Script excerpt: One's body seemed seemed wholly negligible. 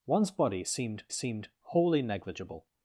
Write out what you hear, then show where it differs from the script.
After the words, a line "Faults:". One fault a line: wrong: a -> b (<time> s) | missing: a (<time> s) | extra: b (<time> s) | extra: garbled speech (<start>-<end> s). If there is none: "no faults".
One's body seemed seemed wholly negligible.
Faults:
no faults